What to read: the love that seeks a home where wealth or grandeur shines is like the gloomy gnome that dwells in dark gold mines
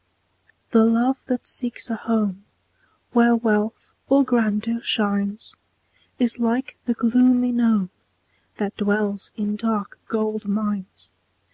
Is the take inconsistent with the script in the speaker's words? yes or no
no